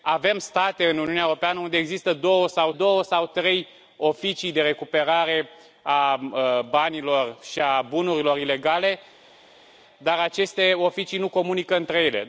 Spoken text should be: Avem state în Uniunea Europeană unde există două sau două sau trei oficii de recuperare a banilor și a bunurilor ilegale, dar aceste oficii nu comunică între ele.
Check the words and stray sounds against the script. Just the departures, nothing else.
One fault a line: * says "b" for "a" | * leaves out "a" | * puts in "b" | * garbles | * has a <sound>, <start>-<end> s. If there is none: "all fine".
all fine